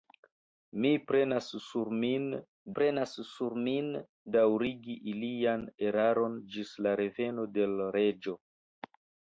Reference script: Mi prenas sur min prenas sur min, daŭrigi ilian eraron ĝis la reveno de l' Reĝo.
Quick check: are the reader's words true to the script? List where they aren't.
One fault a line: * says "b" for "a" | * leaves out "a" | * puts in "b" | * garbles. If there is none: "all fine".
all fine